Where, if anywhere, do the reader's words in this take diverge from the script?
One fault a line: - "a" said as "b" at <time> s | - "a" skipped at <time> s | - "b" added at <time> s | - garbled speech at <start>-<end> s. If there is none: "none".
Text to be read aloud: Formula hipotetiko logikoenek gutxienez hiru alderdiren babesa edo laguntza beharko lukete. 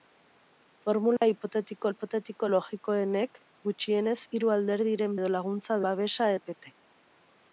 - "hipotetiko" added at 1.9 s
- "babesa" skipped at 5.2 s
- "beharko" said as "babesa" at 5.9 s